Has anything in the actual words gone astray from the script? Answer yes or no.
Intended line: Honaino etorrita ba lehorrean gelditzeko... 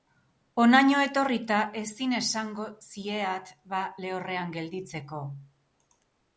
yes